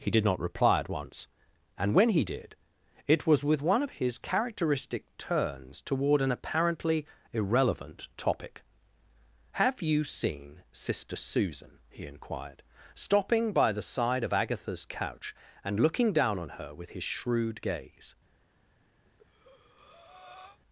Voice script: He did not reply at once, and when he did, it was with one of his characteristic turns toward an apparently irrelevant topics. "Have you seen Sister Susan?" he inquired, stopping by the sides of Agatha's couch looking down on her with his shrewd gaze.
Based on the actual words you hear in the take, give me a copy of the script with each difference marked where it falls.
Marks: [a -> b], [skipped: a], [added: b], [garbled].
He did not reply at once, and when he did, it was with one of his characteristic turns toward an apparently irrelevant [topics. -> topic] "Have you seen Sister Susan?" he inquired, stopping by the [sides -> side] of Agatha's couch [added: and] looking down on her with his shrewd gaze.